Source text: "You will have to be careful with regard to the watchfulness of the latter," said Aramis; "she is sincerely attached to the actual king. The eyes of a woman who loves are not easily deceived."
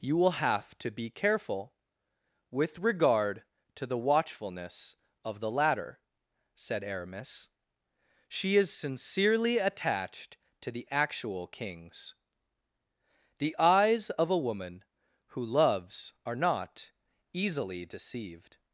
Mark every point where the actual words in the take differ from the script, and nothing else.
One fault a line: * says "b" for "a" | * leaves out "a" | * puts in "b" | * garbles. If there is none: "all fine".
* says "kings" for "king"